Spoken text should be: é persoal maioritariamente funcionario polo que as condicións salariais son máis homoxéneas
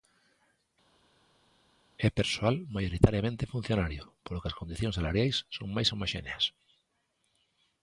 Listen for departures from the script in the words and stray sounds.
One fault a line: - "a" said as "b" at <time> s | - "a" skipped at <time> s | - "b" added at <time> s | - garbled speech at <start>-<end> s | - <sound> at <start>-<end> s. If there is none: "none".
none